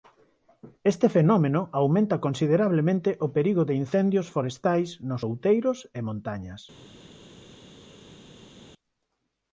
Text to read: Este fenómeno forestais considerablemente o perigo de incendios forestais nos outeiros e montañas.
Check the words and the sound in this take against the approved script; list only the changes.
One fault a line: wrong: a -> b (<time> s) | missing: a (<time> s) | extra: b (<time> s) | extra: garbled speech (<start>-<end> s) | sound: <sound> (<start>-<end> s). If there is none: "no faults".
wrong: forestais -> aumenta (1.8 s)